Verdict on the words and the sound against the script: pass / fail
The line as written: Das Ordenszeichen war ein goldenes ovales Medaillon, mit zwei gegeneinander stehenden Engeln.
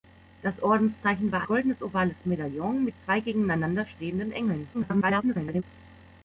fail